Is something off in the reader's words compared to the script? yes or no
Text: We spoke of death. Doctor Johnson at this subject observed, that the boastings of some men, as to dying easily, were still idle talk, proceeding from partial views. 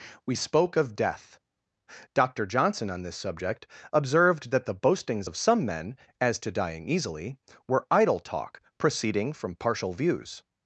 yes